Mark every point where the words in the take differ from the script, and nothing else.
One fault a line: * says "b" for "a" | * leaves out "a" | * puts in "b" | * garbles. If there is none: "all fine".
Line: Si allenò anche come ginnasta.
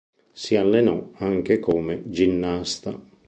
all fine